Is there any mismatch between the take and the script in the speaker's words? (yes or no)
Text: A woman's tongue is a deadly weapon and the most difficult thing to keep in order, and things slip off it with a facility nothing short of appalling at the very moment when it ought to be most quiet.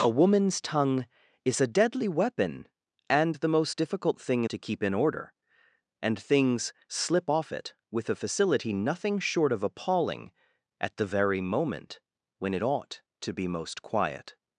no